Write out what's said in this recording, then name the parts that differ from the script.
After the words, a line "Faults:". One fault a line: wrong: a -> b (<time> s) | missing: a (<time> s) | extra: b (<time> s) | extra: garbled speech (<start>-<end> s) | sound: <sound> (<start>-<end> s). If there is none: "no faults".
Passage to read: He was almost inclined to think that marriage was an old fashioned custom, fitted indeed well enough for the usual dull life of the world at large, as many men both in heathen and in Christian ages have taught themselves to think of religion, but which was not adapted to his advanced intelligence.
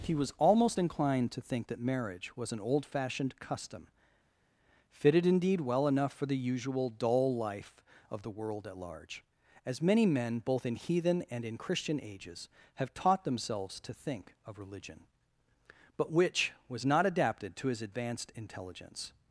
He was almost inclined to think that marriage was an old fashioned custom, fitted indeed well enough for the usual dull life of the world at large, as many men both in heathen and in Christian ages have taught themselves to think of religion, but which was not adapted to his advanced intelligence.
Faults:
no faults